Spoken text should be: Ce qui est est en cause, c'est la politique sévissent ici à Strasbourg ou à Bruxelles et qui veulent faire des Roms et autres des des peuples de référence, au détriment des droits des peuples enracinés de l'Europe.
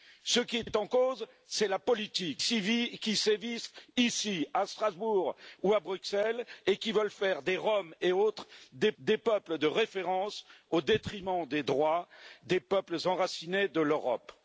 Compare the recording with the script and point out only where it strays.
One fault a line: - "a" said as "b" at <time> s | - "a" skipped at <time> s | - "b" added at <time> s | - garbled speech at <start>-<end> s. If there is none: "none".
none